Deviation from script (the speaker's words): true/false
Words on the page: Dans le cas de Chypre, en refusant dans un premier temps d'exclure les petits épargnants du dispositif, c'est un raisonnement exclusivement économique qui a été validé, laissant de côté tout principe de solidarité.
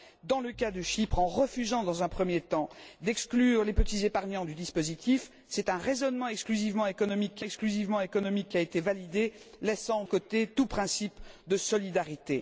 true